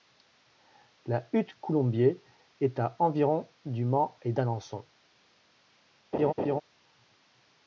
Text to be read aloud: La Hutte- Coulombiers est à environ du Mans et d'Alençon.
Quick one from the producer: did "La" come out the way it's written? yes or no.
yes